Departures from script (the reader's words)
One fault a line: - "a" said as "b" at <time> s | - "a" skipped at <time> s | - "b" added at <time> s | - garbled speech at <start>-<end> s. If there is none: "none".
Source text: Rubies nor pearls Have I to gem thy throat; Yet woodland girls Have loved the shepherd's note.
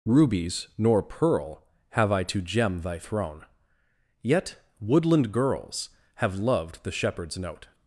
- "pearls" said as "pearl" at 1.0 s
- "throat" said as "throne" at 3.0 s